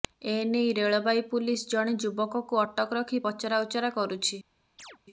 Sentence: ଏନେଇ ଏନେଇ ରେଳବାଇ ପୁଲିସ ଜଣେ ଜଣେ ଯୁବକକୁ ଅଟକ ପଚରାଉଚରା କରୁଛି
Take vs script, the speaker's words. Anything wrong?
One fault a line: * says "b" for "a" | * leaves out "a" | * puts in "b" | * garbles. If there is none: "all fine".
* leaves out "ଏନେଇ"
* leaves out "ଜଣେ"
* puts in "ରଖି"